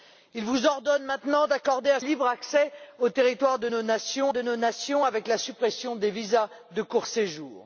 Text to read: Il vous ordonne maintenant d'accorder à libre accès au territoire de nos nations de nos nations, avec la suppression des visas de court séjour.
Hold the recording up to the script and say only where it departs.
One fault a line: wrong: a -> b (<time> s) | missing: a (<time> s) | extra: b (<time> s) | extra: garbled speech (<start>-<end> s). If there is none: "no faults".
no faults